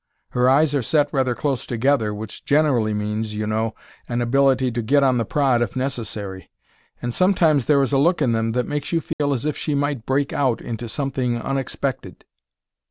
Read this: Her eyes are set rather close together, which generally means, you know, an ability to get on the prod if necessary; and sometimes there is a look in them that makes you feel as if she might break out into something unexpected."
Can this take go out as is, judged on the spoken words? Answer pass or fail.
pass